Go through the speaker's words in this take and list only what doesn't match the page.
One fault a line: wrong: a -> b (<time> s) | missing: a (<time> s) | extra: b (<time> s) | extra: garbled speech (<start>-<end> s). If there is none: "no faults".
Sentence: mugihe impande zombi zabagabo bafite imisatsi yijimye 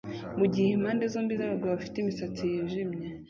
no faults